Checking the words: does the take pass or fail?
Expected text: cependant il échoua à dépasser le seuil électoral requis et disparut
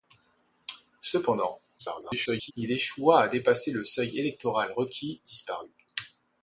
fail